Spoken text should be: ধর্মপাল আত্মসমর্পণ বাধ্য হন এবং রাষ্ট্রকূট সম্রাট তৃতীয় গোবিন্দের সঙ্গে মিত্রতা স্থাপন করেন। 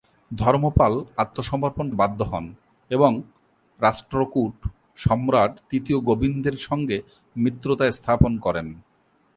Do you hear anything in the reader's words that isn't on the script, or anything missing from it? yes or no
no